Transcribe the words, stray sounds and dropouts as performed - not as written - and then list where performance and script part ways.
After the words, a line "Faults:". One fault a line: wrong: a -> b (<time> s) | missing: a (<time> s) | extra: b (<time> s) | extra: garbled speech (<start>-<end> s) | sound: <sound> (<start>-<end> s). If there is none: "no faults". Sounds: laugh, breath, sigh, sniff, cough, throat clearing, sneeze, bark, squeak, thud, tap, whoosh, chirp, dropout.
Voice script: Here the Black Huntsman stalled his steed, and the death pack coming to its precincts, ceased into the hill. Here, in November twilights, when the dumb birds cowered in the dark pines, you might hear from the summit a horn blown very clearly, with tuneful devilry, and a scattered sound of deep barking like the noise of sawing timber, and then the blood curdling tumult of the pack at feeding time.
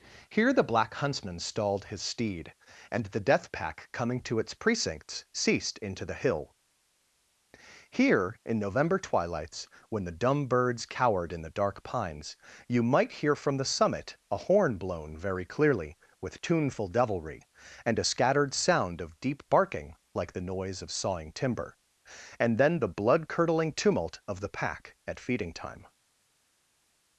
Here the Black Huntsman stalled his steed, and the death pack coming to its precincts, ceased into the hill. Here, in November twilights, when the dumb birds cowered in the dark pines, you might hear from the summit a horn blown very clearly, with tuneful devilry, and a scattered sound of deep barking like the noise of sawing timber, and then the blood curdling tumult of the pack at feeding time.
Faults:
no faults